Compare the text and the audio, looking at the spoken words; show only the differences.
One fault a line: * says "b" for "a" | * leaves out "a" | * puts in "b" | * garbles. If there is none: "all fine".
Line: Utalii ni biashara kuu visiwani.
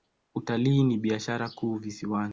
all fine